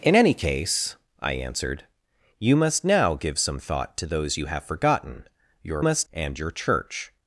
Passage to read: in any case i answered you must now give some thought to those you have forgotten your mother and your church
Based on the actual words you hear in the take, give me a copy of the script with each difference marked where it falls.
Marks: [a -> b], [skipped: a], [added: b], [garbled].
in any case i answered you must now give some thought to those you have forgotten your [mother -> must] and your church